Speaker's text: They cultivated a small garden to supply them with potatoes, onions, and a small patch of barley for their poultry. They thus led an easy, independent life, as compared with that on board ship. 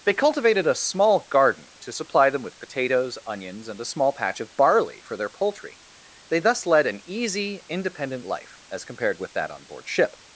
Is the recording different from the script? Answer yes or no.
no